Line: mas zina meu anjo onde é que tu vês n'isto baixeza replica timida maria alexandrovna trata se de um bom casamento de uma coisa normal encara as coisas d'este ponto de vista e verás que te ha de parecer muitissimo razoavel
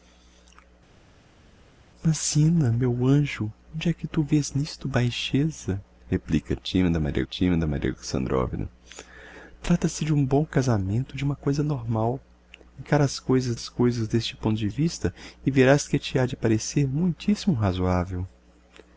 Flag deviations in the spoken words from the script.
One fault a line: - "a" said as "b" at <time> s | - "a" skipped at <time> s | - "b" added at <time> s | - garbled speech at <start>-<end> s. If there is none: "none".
- "timida maria" added at 7.2 s
- "as coisas" added at 13.5 s